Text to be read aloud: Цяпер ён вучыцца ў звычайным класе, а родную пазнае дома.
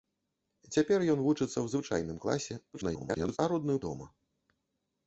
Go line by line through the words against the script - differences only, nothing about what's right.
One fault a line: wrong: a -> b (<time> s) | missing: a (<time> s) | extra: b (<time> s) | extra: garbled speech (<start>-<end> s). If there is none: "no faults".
extra: garbled speech (2.7-3.4 s)
missing: пазнае (3.8 s)